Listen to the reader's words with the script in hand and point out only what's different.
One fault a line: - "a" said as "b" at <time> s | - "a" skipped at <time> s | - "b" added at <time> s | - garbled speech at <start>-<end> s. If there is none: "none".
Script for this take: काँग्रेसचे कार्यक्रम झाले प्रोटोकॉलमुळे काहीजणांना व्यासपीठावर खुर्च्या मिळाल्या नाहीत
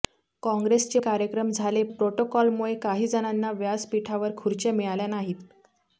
none